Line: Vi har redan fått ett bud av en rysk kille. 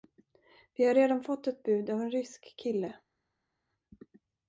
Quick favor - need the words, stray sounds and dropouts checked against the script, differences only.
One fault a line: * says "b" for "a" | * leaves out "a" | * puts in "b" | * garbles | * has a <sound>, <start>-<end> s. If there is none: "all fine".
all fine